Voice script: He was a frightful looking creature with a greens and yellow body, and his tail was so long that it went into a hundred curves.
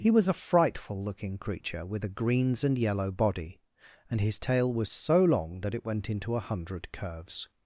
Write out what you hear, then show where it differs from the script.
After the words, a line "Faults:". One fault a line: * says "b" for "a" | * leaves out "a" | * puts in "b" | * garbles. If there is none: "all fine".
He was a frightful looking creature with a greens and yellow body, and his tail was so long that it went into a hundred curves.
Faults:
all fine